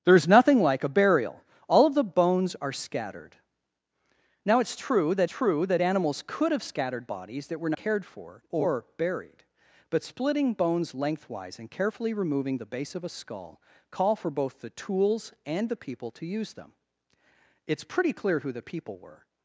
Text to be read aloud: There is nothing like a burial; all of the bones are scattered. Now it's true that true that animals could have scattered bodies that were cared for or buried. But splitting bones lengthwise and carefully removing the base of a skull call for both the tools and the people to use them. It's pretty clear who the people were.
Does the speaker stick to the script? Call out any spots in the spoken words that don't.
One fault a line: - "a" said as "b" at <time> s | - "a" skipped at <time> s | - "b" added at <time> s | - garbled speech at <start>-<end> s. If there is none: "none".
none